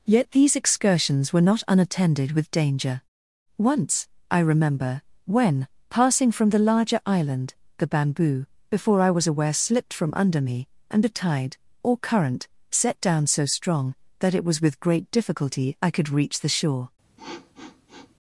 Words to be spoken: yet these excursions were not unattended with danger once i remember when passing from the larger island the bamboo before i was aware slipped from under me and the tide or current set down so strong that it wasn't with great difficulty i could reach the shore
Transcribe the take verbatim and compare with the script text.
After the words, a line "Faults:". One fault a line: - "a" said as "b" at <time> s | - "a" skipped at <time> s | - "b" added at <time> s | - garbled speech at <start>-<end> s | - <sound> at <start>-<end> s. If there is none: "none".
yet these excursions were not unattended with danger once i remember when passing from the larger island the bamboo before i was aware slipped from under me and the tide or current set down so strong that it was with great difficulty i could reach the shore
Faults:
- "wasn't" said as "was" at 14.5 s
- sniff at 17.2-18.2 s